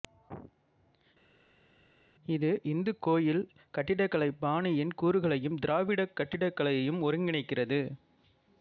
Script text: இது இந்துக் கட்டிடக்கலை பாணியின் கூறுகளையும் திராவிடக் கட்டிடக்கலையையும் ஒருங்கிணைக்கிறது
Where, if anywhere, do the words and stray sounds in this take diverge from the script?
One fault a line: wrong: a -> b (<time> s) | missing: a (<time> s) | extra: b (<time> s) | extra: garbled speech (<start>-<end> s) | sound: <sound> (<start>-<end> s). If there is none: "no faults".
extra: கோயில் (3.0 s)